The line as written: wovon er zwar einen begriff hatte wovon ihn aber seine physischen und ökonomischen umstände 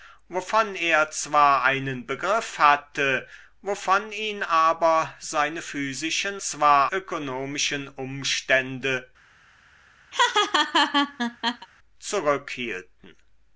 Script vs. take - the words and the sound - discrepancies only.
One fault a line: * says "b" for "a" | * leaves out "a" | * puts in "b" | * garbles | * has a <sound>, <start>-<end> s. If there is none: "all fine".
* says "zwar" for "und"
* has a laugh, 10.1-11.7 s